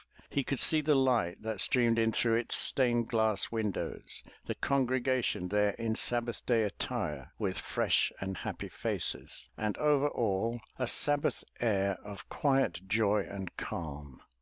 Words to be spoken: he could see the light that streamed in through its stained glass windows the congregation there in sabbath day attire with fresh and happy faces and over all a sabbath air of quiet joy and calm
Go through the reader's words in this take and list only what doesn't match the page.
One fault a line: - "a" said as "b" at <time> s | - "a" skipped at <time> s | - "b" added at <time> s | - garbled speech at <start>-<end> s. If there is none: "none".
none